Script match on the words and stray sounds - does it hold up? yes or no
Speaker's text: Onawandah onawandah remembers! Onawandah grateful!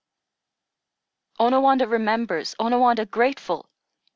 no